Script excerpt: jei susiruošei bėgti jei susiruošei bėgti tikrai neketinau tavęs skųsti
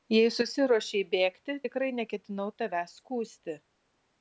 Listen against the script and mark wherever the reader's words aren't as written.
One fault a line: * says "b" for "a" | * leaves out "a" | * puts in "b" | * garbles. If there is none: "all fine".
* leaves out "jei susiruošei bėgti"